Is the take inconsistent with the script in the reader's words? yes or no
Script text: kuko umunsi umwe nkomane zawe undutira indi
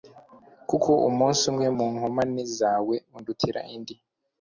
yes